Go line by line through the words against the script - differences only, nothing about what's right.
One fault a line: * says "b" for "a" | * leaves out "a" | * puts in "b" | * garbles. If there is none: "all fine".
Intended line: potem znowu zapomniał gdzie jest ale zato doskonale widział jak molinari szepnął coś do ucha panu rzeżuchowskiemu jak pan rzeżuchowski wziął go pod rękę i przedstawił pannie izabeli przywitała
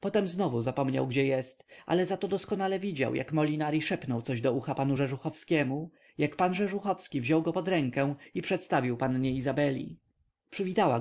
all fine